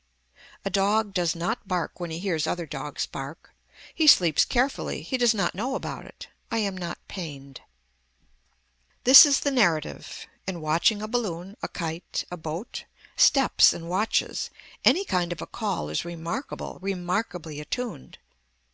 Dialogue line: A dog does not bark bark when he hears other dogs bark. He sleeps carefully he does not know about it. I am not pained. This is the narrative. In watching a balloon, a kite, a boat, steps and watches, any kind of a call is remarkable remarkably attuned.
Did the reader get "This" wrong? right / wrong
right